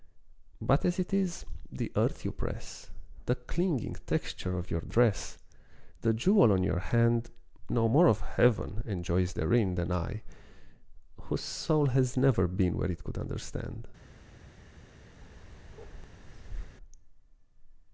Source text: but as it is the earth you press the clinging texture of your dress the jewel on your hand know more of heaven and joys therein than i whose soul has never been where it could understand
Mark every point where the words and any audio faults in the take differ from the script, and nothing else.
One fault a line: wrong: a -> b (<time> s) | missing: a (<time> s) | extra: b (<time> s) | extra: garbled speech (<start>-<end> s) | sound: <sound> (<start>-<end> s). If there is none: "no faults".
sound: bark (15.2-16.8 s)